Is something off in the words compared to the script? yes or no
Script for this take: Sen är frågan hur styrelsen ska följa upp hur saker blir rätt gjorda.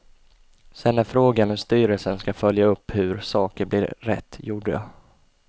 no